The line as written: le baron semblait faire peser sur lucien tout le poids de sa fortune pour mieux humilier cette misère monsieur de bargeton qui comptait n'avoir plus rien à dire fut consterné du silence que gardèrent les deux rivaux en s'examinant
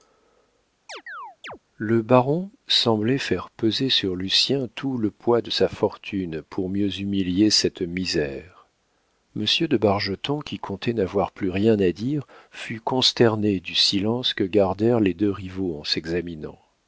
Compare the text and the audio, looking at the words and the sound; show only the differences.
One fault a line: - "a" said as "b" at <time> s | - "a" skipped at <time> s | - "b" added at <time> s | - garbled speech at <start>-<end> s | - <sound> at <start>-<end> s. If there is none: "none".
- chirp at 0.9-1.6 s